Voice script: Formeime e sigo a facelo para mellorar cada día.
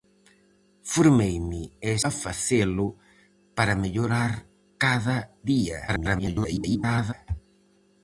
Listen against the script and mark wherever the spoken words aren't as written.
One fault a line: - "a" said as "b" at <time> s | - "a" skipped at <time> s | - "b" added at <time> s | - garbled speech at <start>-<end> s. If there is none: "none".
- "sigo" skipped at 1.9 s
- garbled speech at 5.9-7.1 s